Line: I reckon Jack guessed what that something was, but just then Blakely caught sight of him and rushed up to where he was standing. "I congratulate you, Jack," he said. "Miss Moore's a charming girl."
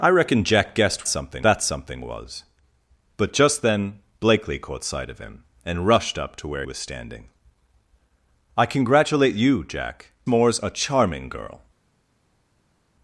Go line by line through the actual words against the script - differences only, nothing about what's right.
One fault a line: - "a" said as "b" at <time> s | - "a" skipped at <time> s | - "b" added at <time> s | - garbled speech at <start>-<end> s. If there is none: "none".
- "what" said as "something" at 1.1 s
- "he" skipped at 6.7 s
- "he said Miss" skipped at 10.1 s